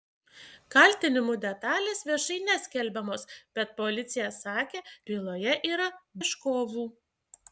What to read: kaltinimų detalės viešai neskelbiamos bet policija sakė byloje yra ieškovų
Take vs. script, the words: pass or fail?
pass